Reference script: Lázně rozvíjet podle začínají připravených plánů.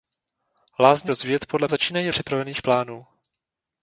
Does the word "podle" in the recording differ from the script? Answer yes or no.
no